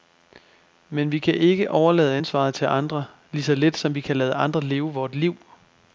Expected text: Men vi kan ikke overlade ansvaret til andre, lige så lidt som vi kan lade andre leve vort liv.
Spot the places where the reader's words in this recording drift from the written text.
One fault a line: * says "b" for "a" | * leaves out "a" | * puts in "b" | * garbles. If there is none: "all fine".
all fine